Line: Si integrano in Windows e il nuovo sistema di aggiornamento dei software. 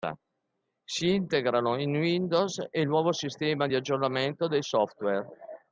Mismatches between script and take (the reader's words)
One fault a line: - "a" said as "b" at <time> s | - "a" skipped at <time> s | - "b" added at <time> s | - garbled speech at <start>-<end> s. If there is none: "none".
none